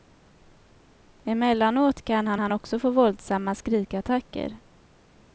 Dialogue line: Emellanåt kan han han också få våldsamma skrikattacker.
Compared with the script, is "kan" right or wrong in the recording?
right